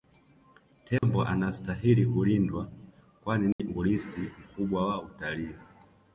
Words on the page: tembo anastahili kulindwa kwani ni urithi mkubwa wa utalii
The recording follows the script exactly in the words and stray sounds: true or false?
false